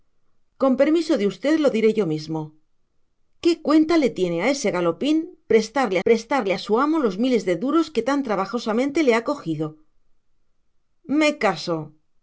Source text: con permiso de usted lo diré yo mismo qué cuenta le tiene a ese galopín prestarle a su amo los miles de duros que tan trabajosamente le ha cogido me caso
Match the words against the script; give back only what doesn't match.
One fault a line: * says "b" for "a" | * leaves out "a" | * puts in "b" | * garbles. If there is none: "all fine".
* puts in "prestarle"